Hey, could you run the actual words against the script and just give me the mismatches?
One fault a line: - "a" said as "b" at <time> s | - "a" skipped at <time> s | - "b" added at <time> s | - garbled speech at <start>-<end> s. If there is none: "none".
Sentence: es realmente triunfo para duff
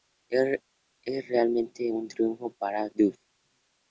- "un" added at 1.9 s